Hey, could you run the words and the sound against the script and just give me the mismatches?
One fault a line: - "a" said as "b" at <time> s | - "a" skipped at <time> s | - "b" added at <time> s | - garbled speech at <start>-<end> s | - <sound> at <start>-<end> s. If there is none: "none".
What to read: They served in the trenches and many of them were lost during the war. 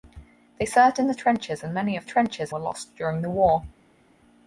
- "them" said as "trenches" at 2.0 s